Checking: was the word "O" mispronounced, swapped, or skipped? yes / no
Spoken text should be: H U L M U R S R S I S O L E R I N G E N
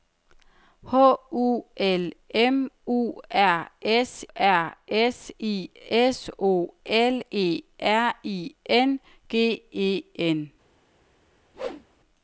no